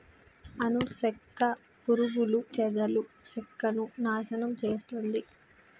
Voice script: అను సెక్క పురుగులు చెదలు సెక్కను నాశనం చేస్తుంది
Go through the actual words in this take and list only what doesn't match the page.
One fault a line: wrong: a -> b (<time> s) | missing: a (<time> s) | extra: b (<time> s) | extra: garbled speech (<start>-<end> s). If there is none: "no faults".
no faults